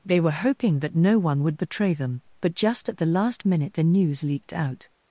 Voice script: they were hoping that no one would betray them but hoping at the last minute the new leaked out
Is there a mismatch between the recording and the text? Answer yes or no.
yes